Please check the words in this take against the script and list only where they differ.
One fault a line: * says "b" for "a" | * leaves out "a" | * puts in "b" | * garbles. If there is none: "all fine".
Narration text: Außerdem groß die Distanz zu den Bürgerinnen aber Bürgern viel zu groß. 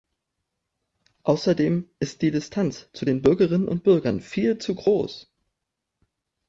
* says "ist" for "groß"
* says "und" for "aber"